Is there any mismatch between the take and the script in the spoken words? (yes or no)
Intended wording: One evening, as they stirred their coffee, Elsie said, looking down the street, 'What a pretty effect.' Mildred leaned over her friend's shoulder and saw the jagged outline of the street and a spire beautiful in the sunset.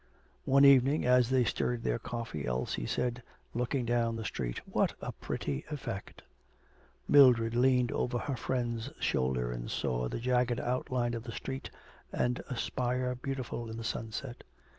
no